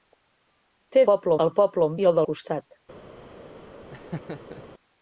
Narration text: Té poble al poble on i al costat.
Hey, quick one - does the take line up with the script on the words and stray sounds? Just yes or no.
no